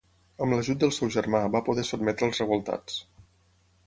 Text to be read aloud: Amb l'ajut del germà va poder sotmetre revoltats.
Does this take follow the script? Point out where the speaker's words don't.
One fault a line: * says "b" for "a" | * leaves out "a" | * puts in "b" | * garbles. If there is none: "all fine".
* puts in "seu"
* puts in "als"